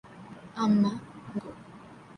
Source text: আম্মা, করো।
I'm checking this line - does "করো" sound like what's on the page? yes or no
yes